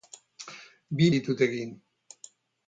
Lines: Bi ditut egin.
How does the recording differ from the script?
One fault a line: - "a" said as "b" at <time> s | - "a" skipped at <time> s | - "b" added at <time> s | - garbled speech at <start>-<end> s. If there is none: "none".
none